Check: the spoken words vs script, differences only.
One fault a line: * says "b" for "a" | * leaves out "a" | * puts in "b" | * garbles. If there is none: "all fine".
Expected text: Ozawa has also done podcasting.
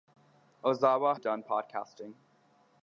* leaves out "has also"